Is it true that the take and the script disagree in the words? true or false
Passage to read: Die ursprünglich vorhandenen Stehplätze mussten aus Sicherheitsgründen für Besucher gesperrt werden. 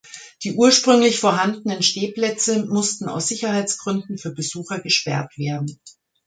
false